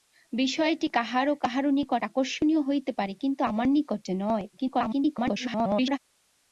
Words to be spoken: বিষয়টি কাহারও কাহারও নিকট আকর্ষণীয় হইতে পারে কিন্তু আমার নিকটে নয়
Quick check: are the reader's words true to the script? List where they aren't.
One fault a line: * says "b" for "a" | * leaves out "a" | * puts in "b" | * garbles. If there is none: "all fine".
* garbles